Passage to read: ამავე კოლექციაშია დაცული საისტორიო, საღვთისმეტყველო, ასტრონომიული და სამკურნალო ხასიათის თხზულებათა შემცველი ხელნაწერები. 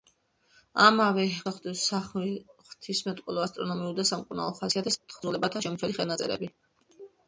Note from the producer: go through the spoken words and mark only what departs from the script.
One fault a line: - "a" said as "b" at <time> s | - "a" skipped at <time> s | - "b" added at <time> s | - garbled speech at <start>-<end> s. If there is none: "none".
- "კოლექციაშია დაცული საისტორიო" skipped at 1.2 s